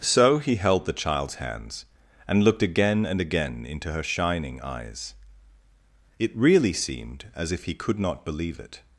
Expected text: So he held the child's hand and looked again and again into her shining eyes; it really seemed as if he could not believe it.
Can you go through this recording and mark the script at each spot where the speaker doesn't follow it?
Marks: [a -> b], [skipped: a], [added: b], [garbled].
So he held the child's [hand -> hands] and looked again and again into her shining eyes; it really seemed as if he could not believe it.